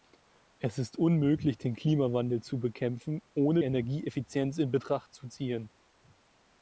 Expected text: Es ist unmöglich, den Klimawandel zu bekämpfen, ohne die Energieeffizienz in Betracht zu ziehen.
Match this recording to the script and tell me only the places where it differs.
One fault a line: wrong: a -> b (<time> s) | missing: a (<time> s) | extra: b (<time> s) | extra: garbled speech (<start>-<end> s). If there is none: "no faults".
missing: die (3.6 s)